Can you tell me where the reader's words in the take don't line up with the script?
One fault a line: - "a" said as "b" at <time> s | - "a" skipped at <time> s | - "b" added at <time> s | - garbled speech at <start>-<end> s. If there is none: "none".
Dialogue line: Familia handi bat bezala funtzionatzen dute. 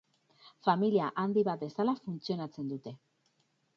none